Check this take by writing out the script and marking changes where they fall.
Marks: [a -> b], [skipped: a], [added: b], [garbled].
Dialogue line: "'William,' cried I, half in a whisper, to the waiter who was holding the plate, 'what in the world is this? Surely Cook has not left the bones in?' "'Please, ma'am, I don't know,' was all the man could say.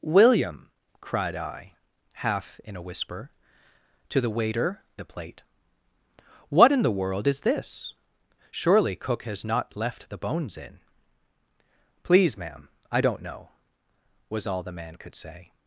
"'William,' cried I, half in a whisper, to the waiter [skipped: who was holding] the plate, 'what in the world is this? Surely Cook has not left the bones in?' "'Please, ma'am, I don't know,' was all the man could say.